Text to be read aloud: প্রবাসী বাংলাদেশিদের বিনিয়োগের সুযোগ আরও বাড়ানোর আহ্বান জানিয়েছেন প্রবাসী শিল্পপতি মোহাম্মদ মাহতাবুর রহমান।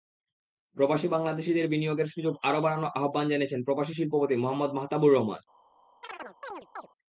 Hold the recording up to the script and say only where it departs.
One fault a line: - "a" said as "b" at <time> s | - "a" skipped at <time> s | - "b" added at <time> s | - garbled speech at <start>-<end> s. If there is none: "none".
none